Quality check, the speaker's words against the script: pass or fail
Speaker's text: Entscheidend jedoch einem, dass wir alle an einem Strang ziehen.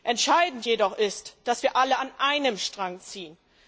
fail